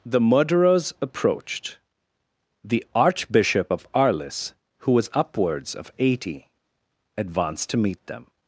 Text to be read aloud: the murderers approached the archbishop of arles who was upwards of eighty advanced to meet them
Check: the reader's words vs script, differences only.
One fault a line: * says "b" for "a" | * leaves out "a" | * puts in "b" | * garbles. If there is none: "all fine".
all fine